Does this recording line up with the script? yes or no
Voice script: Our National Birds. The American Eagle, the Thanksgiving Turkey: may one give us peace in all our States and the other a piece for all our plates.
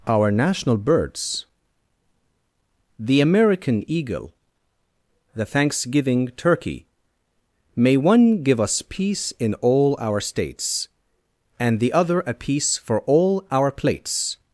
yes